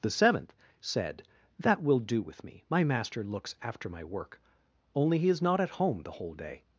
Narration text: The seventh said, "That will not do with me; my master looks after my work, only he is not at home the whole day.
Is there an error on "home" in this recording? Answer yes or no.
no